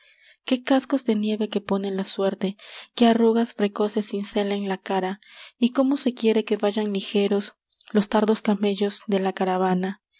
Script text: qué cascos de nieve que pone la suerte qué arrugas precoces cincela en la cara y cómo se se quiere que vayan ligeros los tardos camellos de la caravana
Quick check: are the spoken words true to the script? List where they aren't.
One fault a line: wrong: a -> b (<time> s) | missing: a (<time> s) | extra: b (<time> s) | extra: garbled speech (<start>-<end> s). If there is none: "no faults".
missing: se (6.1 s)